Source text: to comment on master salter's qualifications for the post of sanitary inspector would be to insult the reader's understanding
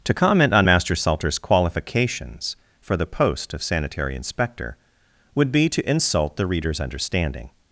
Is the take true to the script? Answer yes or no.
yes